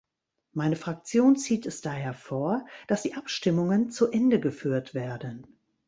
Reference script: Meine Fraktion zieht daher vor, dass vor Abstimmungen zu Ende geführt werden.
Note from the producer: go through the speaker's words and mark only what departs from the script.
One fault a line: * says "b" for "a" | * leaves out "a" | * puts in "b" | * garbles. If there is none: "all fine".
* puts in "es"
* says "die" for "vor"